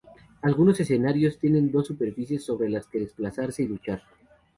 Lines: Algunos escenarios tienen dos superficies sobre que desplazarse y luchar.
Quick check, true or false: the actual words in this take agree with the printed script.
false